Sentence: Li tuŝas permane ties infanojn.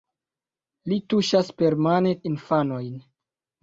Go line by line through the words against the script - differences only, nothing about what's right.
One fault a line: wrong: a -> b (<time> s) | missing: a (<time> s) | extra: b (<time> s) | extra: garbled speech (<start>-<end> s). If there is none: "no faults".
missing: ties (2.1 s)